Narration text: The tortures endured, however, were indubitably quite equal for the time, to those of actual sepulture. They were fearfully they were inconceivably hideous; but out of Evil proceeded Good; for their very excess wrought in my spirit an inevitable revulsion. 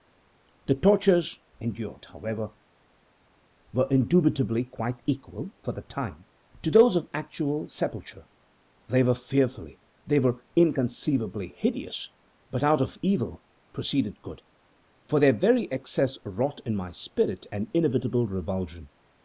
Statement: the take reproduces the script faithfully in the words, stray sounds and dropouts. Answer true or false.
true